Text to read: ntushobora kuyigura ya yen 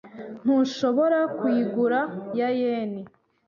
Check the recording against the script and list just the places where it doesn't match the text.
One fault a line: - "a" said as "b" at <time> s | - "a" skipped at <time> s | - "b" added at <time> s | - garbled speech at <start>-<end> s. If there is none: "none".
none